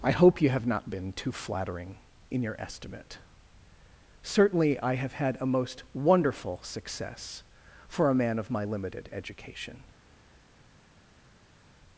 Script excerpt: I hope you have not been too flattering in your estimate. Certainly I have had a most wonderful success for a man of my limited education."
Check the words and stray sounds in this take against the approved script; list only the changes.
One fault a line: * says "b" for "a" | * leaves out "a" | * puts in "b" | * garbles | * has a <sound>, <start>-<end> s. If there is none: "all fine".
all fine